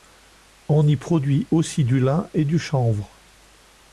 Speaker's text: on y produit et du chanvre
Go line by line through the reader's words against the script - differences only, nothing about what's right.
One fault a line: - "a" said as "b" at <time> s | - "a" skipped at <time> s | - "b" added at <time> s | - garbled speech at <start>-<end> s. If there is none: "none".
- "aussi du lin" added at 1.5 s